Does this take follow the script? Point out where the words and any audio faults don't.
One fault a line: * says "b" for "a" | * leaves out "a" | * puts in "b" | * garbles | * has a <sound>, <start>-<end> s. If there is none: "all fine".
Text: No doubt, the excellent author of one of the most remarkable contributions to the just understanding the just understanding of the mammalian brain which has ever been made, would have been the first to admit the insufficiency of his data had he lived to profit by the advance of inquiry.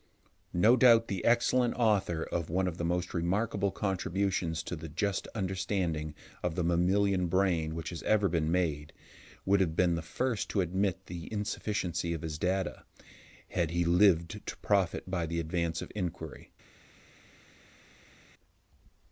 * leaves out "the just understanding"